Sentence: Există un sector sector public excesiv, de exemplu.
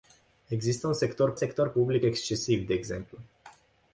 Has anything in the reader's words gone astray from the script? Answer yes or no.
no